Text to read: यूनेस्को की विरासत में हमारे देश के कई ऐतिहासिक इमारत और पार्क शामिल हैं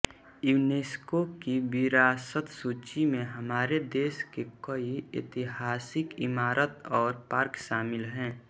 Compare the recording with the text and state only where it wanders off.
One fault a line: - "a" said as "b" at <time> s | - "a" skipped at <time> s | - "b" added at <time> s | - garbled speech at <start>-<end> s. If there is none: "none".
- "सूची" added at 2.5 s